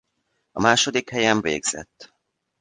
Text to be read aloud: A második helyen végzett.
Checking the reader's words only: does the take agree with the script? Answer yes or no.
yes